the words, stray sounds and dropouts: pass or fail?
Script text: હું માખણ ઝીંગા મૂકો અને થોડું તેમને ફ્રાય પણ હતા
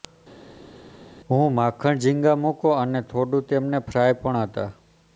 pass